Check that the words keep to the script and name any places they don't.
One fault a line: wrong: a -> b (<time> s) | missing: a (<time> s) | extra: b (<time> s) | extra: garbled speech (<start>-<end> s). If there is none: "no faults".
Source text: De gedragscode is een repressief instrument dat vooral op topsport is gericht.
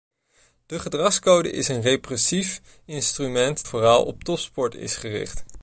missing: dat (3.6 s)